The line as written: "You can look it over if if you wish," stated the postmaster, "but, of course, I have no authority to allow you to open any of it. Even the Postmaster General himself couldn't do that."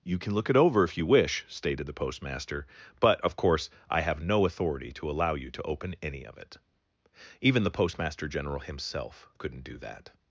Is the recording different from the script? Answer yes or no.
yes